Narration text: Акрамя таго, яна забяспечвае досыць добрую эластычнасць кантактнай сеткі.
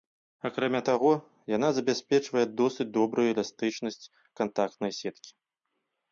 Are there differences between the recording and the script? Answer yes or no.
no